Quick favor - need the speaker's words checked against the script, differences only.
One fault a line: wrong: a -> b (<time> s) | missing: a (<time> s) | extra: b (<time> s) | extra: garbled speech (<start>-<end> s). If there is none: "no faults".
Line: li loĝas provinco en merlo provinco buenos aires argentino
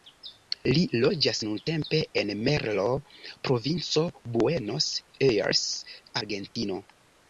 wrong: provinco -> nuntempe (1.5 s)